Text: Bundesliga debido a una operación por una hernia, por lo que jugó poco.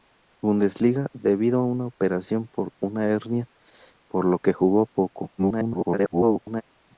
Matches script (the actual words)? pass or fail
fail